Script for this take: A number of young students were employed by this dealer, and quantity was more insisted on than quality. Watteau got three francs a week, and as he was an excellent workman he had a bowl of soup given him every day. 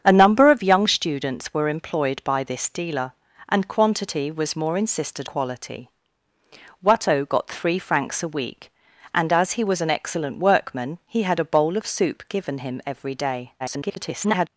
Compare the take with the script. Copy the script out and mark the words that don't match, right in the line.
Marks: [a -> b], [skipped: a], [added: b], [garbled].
A number of young students were employed by this dealer, and quantity was more insisted [skipped: on than] quality. Watteau got three francs a week, and as he was an excellent workman he had a bowl of soup given him every day. [garbled]